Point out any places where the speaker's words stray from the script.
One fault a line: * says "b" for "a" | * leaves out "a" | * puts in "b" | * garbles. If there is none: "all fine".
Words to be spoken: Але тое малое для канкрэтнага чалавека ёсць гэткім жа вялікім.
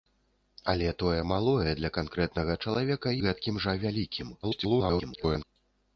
* leaves out "ёсць"
* garbles